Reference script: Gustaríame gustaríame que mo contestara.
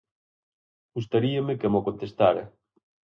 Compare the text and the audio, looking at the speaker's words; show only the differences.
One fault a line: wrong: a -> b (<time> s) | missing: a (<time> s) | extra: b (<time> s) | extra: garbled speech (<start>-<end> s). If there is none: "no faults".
missing: gustaríame (1.6 s)